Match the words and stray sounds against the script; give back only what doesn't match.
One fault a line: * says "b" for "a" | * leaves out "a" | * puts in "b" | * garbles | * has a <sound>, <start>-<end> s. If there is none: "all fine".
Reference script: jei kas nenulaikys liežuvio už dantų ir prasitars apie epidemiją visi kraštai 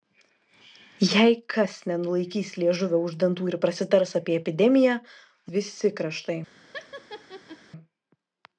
* has a laugh, 6.7-7.6 s